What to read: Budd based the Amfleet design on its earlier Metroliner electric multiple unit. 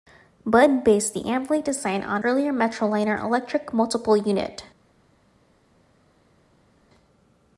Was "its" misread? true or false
true